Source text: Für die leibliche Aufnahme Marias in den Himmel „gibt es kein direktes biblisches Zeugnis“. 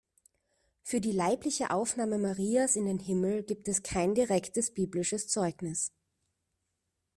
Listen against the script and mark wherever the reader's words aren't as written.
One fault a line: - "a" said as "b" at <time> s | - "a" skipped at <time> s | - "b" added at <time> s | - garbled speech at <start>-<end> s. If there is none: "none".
none